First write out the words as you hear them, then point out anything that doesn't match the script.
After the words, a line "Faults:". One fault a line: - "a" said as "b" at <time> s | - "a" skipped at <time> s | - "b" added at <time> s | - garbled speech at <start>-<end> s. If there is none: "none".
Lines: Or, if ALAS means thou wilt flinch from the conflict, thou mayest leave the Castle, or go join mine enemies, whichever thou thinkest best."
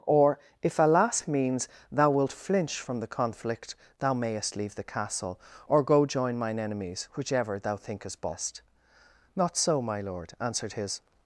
Or, if ALAS means thou wilt flinch from the conflict, thou mayest leave the Castle, or go join mine enemies, whichever thou thinkest best." "Not so, my lord," answered his
Faults:
- "Not so my lord answered his" added at 9.3 s